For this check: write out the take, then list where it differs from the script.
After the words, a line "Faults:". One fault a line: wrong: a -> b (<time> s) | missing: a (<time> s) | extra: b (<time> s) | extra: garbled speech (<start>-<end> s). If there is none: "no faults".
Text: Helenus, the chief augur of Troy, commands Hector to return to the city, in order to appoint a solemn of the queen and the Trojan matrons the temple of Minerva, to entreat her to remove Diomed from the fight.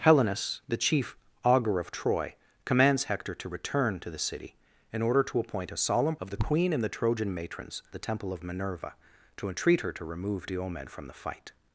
Helenus, the chief augur of Troy, commands Hector to return to the city, in order to appoint a solemn of the queen and the Trojan matrons the temple of Minerva, to entreat her to remove Diomed from the fight.
Faults:
no faults